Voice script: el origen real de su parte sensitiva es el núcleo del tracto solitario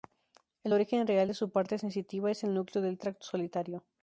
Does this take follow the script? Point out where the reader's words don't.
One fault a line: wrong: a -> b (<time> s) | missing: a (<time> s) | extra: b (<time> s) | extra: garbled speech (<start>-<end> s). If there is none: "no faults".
no faults